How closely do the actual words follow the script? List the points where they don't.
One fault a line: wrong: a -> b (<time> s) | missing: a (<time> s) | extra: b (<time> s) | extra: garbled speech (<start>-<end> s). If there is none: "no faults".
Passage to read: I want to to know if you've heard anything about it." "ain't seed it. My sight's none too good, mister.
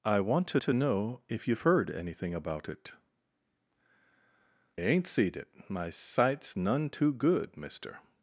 no faults